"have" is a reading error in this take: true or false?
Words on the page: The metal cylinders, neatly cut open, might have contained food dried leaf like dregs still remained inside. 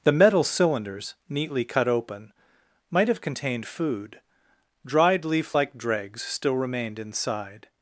false